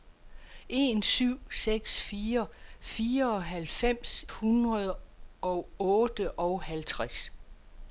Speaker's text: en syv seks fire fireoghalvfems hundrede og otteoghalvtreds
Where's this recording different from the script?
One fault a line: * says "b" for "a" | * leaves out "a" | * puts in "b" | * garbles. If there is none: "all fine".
all fine